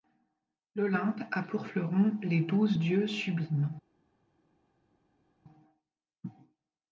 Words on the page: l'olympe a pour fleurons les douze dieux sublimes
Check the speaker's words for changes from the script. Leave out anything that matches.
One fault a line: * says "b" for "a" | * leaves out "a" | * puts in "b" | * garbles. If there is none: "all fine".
all fine